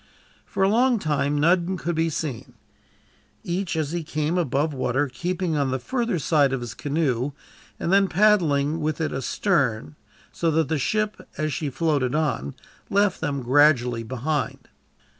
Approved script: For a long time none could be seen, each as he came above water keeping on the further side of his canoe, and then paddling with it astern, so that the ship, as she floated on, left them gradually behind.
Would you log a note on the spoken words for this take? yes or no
no